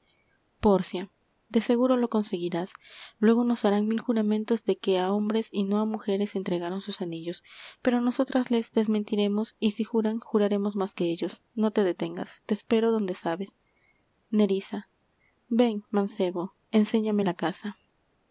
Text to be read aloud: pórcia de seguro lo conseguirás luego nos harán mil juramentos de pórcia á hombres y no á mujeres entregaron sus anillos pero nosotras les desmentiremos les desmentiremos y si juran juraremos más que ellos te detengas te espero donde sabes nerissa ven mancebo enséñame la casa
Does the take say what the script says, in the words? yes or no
no